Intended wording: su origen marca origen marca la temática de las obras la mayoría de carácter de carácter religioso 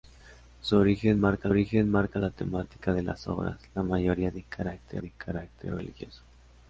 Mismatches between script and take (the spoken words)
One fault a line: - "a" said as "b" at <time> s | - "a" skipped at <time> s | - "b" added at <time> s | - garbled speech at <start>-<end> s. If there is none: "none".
none